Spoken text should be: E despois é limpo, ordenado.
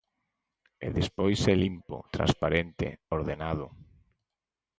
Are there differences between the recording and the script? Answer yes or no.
yes